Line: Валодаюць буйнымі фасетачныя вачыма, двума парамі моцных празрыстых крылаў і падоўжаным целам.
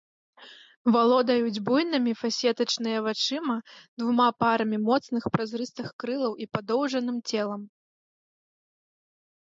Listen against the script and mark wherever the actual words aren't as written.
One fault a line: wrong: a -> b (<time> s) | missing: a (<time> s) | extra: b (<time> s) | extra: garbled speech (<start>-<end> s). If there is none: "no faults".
no faults